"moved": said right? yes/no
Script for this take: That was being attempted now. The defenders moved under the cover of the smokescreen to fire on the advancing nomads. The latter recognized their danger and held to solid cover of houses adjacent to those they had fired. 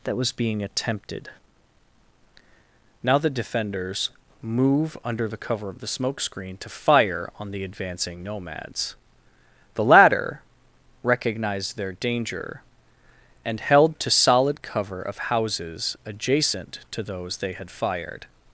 no